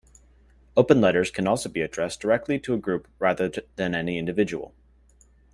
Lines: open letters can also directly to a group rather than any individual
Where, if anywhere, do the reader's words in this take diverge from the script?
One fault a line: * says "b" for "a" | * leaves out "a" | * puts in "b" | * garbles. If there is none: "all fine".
* puts in "be addressed"